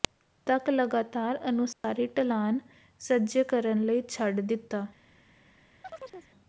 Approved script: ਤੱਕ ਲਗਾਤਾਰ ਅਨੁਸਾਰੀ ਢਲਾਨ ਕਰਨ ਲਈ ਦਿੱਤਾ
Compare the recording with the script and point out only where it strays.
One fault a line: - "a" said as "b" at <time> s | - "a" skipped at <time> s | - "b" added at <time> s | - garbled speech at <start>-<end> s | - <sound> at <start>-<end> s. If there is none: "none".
- dropout at 1.7-1.8 s
- "ਸੱਜੇ" added at 3.0 s
- "ਛੱਡ" added at 4.1 s
- chirp at 5.8-6.3 s